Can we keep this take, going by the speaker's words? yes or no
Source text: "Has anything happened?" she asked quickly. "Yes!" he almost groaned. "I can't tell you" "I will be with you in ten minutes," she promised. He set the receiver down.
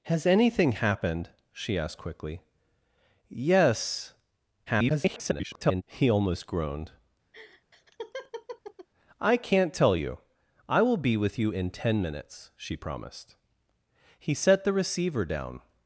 no